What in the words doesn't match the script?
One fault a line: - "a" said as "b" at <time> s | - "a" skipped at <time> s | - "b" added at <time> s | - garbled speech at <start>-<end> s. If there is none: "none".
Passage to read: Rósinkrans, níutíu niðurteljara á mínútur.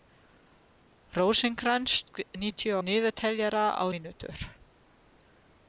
none